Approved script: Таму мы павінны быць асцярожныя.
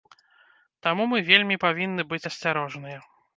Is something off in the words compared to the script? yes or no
yes